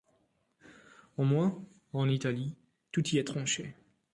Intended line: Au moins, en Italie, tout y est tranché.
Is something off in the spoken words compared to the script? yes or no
no